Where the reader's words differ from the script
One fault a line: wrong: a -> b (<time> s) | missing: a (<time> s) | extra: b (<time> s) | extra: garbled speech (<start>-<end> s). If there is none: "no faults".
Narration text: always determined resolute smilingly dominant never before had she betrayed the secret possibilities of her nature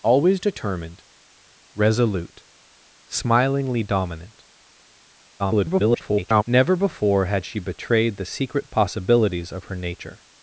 extra: garbled speech (5.4-6.4 s)